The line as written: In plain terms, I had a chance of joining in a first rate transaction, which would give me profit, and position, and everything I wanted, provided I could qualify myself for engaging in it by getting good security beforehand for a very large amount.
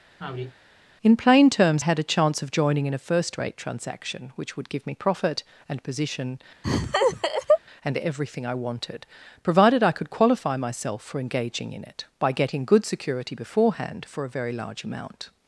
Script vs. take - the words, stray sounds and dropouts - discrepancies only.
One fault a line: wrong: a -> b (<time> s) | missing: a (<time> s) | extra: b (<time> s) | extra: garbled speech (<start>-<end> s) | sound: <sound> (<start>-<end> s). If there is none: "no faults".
sound: sigh (0.2-0.6 s)
missing: I (1.8 s)
sound: laugh (6.6-7.6 s)